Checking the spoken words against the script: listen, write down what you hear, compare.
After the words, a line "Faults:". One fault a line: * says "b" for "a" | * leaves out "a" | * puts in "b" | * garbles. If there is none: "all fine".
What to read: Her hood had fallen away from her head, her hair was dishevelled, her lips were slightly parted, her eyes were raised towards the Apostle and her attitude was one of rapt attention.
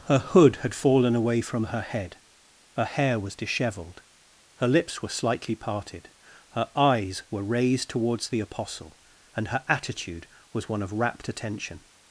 Her hood had fallen away from her head, her hair was dishevelled, her lips were slightly parted, her eyes were raised towards the Apostle and her attitude was one of rapt attention.
Faults:
all fine